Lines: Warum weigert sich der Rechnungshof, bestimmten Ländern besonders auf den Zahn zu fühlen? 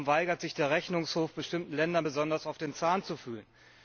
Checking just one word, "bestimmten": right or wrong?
right